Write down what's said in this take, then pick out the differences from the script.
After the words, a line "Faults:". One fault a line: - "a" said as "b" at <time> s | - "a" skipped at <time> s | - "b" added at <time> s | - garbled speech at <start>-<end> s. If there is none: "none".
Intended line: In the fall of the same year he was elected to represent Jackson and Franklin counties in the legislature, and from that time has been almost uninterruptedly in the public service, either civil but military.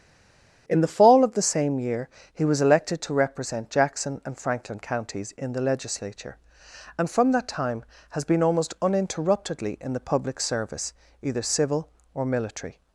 In the fall of the same year he was elected to represent Jackson and Franklin counties in the legislature, and from that time has been almost uninterruptedly in the public service, either civil or military.
Faults:
- "but" said as "or" at 12.1 s